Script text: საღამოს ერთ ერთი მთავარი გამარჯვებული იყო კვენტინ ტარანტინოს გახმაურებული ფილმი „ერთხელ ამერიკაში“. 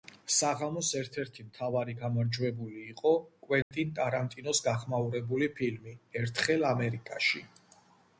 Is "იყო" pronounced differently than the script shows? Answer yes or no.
no